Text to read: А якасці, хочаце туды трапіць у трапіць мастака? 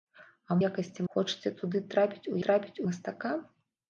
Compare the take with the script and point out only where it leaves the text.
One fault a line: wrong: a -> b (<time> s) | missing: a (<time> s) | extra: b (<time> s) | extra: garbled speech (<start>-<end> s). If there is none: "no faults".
no faults